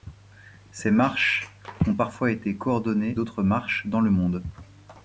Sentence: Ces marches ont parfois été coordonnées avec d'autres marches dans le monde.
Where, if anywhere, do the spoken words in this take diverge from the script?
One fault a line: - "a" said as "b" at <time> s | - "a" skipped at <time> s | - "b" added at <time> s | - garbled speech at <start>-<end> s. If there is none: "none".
- "avec" skipped at 3.2 s